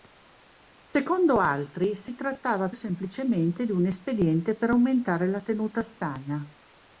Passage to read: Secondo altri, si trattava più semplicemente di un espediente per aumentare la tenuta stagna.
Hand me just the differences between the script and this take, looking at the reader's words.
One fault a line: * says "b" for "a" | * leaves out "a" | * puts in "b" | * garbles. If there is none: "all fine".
* leaves out "più"